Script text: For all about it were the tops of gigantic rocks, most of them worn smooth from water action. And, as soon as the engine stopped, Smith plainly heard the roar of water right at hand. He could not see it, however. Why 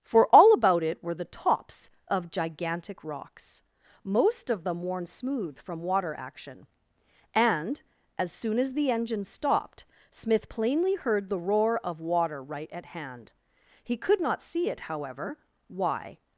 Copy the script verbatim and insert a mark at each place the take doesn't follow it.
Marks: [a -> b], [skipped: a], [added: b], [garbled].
For all about it were the tops of gigantic rocks, most of them worn smooth from water action. And, as soon as the engine stopped, Smith plainly heard the roar of water right at hand. He could not see it, however. Why